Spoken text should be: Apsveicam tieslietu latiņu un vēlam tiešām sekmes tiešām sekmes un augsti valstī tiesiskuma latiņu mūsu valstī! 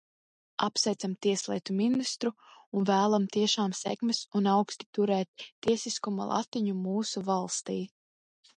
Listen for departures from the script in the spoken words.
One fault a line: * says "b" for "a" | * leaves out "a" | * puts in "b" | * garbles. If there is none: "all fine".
* says "ministru" for "latiņu"
* leaves out "tiešām sekmes"
* says "turēt" for "valstī"